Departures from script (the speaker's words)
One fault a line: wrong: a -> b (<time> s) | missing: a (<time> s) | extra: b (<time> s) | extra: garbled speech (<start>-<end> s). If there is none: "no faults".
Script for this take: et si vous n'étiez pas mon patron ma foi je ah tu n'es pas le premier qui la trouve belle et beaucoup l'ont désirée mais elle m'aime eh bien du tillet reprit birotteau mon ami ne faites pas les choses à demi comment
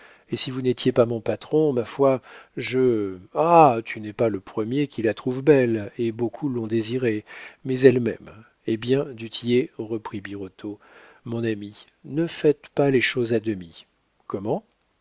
no faults